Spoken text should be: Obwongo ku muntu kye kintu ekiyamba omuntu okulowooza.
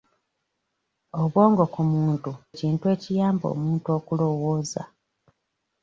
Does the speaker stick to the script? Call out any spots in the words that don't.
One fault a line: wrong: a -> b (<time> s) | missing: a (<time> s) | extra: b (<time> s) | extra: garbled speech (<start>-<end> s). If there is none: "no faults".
missing: kye (2.3 s)